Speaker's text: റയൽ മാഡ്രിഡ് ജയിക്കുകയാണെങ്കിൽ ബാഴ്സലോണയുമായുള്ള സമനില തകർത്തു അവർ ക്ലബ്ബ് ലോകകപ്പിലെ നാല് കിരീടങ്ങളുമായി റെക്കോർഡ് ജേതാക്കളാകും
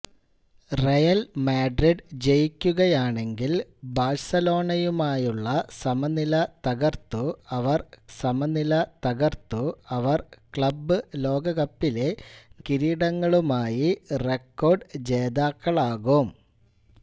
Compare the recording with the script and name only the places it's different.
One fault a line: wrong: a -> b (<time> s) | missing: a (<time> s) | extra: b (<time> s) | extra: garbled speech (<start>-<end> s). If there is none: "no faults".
extra: സമനില തകർത്തു അവർ (8.2 s)
missing: നാല് (12.1 s)